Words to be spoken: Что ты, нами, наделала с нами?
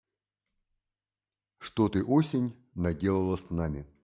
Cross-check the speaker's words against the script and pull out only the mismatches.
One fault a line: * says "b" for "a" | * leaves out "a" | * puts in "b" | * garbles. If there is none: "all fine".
* says "осень" for "нами"